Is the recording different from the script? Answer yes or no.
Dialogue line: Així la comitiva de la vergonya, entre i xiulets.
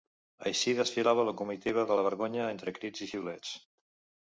yes